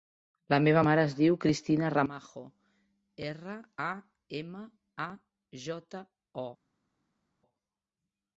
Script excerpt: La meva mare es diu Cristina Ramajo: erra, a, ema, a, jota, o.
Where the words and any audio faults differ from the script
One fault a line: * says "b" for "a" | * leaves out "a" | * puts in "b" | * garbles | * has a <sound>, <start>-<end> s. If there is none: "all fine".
all fine